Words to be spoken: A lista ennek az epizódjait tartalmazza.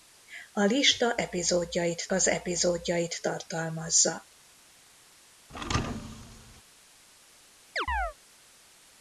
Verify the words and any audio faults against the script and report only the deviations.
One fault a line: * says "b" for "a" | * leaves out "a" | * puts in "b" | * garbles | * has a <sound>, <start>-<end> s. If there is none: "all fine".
* says "epizódjait" for "ennek"
* has a thud, 5.5-6.6 s
* has a chirp, 7.8-8.1 s